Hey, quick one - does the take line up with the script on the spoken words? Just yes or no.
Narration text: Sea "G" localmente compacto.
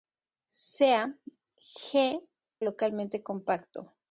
yes